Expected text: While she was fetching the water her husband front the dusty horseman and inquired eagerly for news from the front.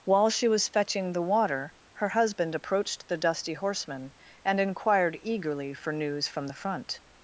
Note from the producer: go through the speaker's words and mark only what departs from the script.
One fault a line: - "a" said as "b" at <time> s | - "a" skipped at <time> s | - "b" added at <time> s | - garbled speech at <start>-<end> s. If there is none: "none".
- "front" said as "approached" at 2.5 s